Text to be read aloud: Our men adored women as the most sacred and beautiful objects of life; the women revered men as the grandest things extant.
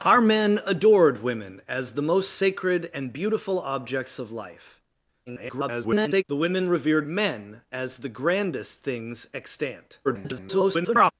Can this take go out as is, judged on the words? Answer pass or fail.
fail